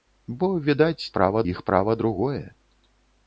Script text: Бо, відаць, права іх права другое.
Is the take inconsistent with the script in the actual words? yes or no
no